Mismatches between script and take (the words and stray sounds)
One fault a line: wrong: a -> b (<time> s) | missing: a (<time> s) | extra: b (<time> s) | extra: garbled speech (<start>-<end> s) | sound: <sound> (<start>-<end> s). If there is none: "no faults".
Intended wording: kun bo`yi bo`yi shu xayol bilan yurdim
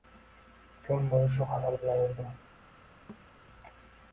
missing: bo`yi (1.3 s)
sound: thud (3.1-3.3 s)